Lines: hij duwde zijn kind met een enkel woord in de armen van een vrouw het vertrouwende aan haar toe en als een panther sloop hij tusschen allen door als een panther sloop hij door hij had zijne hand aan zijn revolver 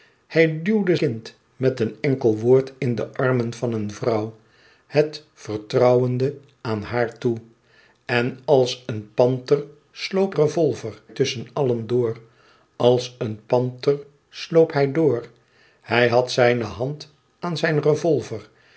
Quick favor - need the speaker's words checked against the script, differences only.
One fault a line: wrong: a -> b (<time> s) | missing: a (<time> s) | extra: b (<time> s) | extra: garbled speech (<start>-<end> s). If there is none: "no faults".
missing: zijn (0.9 s)
wrong: hij -> revolver (10.3 s)